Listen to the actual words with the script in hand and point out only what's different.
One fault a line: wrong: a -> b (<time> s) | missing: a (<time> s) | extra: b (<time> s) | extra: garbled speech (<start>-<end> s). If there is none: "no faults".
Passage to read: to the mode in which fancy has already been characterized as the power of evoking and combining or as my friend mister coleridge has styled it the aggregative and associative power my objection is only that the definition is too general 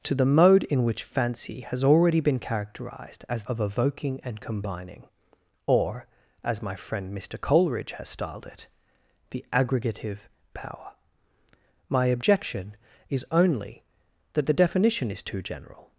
missing: the power (3.4 s)
missing: and associative (10.3 s)